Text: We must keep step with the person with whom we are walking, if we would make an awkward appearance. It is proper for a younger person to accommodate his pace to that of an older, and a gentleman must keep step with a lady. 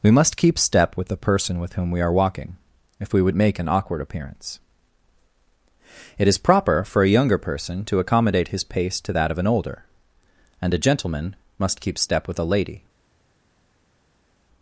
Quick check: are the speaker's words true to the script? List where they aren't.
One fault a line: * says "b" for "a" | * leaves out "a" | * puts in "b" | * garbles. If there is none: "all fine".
all fine